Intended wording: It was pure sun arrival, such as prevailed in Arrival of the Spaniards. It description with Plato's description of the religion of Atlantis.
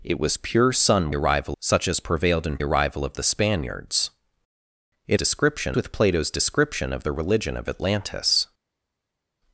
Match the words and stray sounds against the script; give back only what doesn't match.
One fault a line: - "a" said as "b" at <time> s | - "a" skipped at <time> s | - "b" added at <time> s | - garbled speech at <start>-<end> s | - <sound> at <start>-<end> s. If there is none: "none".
none